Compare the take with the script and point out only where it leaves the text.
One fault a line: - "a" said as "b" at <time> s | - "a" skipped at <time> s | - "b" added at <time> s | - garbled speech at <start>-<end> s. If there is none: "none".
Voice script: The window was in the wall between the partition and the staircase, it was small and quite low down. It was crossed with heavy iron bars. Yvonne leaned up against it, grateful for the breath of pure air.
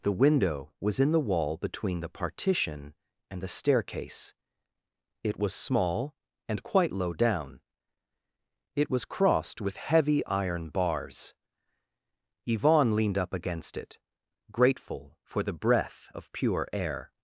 none